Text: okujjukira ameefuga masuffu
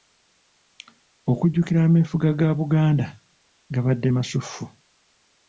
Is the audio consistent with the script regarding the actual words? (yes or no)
no